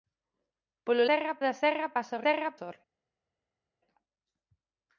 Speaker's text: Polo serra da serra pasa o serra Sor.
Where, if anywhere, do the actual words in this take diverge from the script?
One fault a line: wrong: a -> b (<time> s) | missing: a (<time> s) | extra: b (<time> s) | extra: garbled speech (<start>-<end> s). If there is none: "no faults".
no faults